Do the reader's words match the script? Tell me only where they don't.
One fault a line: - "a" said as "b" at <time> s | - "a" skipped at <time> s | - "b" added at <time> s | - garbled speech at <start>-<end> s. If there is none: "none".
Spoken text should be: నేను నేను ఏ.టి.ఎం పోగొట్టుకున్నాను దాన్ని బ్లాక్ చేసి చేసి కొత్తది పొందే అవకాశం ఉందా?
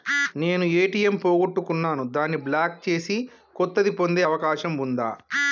- "నేను" skipped at 0.7 s
- "చేసి" skipped at 3.2 s